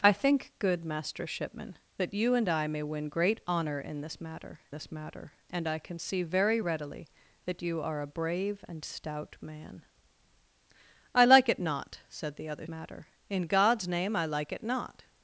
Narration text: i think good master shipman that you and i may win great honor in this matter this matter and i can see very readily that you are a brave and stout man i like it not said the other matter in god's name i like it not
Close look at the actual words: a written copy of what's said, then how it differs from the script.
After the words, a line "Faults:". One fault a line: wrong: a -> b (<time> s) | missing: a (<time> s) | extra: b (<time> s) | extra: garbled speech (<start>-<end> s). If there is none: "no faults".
i think good master shipman that you and i may win great honor in this matter this matter and i can see very readily that you are a brave and stout man i like it not said the other matter in god's name i like it not
Faults:
no faults